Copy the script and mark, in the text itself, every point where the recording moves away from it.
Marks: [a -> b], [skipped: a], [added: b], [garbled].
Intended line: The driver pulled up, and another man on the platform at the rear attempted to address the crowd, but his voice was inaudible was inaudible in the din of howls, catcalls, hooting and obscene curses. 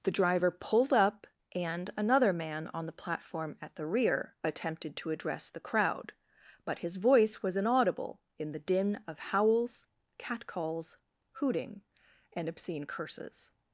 The driver pulled up, and another man on the platform at the rear attempted to address the crowd, but his voice was inaudible [skipped: was inaudible] in the din of howls, catcalls, hooting and obscene curses.